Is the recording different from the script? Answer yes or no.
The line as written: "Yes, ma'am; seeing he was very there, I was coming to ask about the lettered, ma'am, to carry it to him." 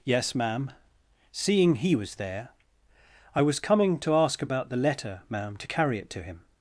yes